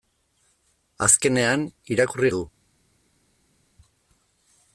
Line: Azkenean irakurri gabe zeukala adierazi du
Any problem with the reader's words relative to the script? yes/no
yes